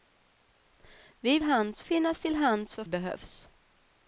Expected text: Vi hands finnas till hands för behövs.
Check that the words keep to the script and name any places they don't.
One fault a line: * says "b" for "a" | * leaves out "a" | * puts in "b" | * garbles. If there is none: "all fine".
all fine